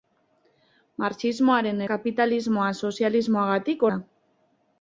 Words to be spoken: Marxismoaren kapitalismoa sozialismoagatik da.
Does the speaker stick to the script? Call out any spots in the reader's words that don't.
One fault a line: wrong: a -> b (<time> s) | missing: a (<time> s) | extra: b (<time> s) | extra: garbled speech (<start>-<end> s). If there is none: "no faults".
no faults